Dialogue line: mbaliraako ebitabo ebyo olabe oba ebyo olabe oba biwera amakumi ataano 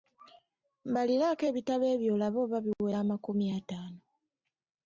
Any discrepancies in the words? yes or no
yes